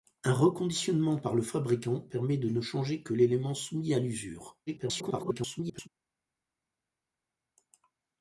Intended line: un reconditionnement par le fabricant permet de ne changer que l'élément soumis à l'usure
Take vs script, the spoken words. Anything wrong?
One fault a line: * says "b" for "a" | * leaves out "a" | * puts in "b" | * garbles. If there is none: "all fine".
* garbles